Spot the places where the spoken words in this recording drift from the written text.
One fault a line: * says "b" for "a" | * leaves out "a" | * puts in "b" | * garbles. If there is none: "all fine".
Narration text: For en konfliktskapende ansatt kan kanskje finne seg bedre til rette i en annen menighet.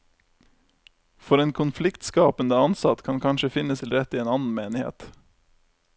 * leaves out "seg bedre"